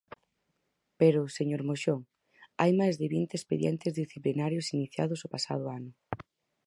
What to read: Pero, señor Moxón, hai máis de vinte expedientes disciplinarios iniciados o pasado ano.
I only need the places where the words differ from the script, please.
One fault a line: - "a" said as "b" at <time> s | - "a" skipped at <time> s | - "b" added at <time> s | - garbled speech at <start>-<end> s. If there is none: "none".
none